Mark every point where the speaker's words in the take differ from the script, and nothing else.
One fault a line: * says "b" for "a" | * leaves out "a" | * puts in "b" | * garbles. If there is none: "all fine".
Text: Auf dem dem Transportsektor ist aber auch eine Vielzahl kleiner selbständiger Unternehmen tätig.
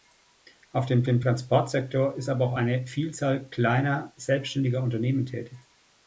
all fine